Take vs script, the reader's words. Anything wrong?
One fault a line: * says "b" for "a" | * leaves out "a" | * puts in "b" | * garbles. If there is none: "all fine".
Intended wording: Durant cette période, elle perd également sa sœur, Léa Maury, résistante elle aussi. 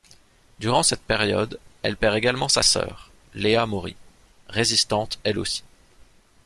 all fine